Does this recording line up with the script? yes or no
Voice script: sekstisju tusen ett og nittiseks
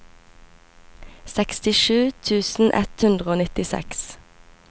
no